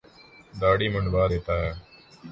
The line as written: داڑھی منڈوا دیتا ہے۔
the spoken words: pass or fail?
pass